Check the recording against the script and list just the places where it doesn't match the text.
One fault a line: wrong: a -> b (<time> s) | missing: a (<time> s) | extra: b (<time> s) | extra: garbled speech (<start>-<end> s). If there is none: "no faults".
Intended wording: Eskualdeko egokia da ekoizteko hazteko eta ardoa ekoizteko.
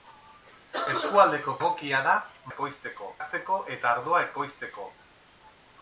no faults